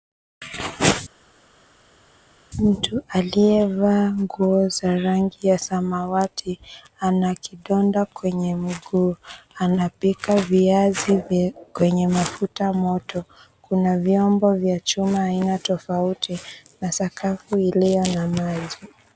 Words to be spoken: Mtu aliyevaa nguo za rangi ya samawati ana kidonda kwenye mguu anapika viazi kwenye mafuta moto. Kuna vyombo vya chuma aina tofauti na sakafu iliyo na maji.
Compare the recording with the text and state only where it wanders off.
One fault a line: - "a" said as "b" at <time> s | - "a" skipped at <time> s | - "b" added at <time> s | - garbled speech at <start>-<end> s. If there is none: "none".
none